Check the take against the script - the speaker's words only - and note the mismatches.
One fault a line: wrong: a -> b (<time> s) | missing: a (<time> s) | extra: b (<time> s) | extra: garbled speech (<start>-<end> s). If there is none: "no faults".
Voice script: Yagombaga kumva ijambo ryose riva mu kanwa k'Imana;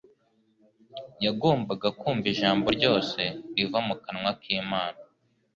no faults